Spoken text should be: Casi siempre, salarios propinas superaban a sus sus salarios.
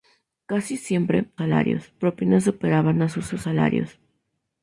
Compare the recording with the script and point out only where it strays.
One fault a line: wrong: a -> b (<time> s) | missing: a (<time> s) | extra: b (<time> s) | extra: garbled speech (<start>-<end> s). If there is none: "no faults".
no faults